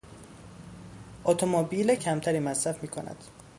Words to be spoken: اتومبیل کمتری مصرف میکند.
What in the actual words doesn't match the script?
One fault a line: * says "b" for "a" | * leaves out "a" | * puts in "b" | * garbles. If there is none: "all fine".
all fine